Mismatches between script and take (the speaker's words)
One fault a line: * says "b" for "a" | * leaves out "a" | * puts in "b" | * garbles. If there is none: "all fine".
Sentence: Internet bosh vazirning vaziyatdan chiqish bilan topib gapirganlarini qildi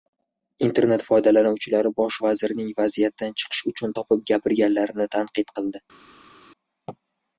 * puts in "foydalanuvchilari"
* says "uchun" for "bilan"
* puts in "tanqid"